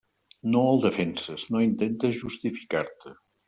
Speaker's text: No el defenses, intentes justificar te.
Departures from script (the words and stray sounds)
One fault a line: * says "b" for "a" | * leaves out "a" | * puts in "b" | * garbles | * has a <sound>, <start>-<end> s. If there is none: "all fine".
* puts in "no"